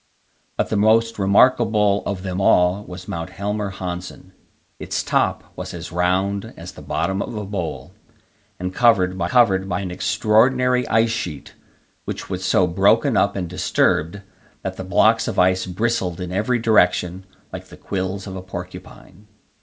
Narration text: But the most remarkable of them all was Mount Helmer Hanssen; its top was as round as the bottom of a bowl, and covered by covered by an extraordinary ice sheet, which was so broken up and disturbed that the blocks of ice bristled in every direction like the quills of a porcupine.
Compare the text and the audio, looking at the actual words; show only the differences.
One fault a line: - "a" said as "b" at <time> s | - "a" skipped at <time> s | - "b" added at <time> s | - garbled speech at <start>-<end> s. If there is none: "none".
none